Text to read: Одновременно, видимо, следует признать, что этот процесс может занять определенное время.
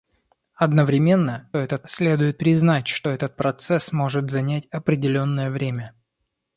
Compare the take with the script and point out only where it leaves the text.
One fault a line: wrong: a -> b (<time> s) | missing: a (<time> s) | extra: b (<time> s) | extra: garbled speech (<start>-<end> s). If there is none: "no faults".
wrong: видимо -> этот (1.6 s)